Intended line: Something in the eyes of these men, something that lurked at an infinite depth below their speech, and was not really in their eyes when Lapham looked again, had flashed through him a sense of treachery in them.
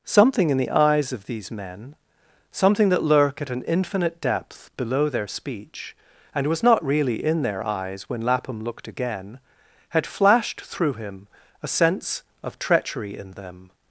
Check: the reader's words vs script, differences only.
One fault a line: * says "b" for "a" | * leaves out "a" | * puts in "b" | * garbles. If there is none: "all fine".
* says "lurk" for "lurked"